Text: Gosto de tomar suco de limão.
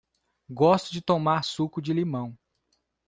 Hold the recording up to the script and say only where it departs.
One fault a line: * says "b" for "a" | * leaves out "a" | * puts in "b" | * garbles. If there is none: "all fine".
all fine